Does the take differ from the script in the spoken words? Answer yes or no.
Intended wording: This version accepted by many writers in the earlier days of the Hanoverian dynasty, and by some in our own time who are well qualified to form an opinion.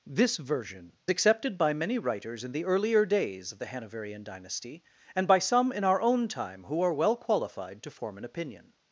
no